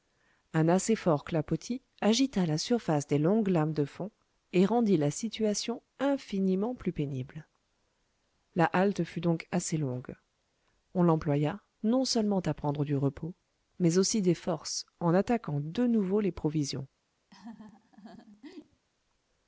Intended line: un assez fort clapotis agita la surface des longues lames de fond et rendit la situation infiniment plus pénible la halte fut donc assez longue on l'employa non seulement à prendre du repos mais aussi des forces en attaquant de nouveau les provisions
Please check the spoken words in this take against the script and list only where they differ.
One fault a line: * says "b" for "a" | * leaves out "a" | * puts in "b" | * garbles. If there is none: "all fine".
all fine